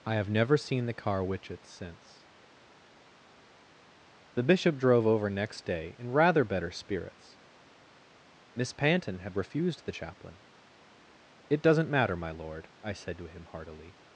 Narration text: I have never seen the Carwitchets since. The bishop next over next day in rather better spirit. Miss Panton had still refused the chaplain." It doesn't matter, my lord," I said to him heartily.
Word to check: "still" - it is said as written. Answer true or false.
false